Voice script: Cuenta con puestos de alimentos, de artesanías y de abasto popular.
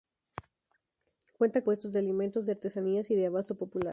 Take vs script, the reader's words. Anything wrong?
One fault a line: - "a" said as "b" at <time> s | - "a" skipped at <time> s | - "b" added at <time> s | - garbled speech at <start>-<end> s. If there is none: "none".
- "con" skipped at 1.6 s